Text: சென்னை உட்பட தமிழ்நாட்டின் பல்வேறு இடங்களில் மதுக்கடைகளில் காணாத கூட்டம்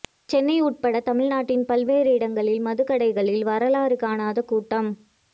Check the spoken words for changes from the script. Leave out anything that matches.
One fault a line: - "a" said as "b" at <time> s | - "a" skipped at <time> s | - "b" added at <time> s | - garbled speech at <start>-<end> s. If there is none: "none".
- "வரலாறு" added at 3.5 s